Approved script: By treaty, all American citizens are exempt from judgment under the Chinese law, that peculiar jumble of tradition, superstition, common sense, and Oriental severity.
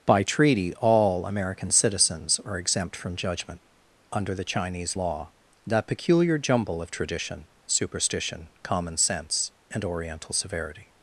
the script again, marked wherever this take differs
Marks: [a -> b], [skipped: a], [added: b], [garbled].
By treaty, all American citizens are exempt from judgment under the Chinese law, that peculiar jumble of tradition, superstition, common sense, and Oriental severity.